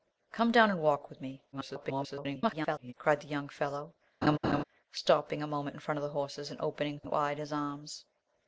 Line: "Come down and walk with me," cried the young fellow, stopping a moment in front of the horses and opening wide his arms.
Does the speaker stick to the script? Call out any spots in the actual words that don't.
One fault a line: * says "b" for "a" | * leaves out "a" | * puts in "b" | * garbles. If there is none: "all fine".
* garbles